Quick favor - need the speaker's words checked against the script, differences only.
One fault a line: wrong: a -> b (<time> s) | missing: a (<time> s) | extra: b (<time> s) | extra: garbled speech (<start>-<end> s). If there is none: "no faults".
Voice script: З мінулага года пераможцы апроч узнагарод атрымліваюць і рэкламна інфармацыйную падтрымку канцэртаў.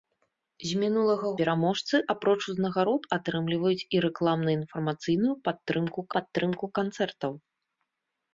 missing: года (1.3 s)
extra: падтрымку (6.1 s)